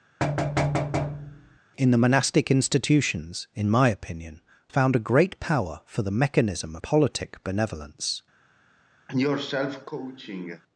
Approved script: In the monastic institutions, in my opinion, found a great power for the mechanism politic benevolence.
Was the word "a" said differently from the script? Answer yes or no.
no